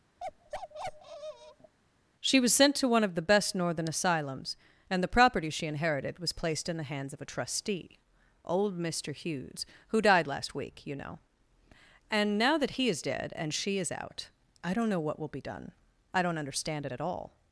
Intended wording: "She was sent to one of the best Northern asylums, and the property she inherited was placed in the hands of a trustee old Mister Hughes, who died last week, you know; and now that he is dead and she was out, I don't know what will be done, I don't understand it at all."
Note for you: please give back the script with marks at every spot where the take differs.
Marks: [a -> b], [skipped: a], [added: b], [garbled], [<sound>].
[bark] "She was sent to one of the best Northern asylums, and the property she inherited was placed in the hands of a trustee old Mister Hughes, who died last week, you know; and now that he is dead and she [was -> is] out, I don't know what will be done, I don't understand it at all."